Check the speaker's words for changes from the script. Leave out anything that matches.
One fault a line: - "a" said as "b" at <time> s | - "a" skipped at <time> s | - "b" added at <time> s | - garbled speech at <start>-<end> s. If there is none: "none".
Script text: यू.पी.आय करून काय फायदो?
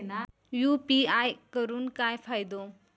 none